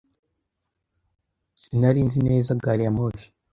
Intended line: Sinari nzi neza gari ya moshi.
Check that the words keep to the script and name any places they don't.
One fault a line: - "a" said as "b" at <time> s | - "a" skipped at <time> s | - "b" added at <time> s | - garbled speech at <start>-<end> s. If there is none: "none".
none